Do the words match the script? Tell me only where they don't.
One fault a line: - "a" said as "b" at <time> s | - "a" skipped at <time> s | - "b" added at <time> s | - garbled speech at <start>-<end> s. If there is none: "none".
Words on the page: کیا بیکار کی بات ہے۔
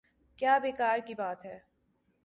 none